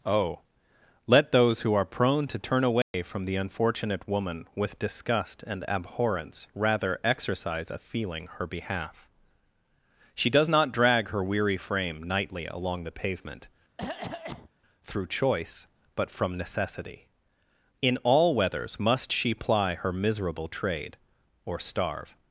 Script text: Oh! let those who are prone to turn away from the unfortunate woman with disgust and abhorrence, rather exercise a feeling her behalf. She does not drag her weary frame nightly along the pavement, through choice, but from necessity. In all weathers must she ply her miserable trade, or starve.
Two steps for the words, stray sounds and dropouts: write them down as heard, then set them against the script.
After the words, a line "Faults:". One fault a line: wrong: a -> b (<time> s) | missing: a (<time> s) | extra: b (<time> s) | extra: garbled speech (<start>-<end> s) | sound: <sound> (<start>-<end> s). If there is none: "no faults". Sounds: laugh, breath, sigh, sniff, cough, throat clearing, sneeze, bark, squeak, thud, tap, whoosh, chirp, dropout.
Oh! let those who are prone to turn away from the unfortunate woman with disgust and abhorrence, rather exercise a feeling her behalf. She does not drag her weary frame nightly along the pavement, through choice, but from necessity. In all weathers must she ply her miserable trade, or starve.
Faults:
sound: dropout (2.8-2.9 s)
sound: cough (13.8-14.5 s)